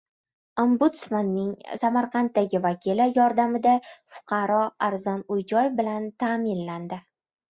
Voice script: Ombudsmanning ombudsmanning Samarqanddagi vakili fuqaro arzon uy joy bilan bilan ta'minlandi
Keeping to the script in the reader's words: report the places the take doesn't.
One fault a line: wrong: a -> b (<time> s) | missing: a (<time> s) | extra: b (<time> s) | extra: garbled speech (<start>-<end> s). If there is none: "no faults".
missing: ombudsmanning (1.5 s)
extra: yordamida (3.2 s)
missing: bilan (6.1 s)